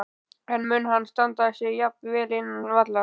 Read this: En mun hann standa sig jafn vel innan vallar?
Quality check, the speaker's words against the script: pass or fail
pass